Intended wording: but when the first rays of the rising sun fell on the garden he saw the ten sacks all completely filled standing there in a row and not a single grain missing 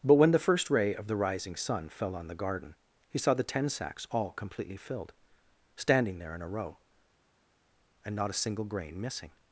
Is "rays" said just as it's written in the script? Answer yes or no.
no